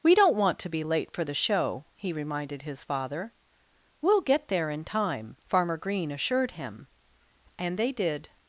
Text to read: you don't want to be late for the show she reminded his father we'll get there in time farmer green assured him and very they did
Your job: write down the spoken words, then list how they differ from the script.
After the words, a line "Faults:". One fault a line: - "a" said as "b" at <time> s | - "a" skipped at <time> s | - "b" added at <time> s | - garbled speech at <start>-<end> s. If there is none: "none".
we don't want to be late for the show he reminded his father we'll get there in time farmer green assured him and they did
Faults:
- "you" said as "we" at 0.0 s
- "she" said as "he" at 2.0 s
- "very" skipped at 7.8 s